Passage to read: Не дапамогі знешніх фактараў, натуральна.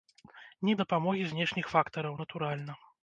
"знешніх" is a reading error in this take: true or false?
false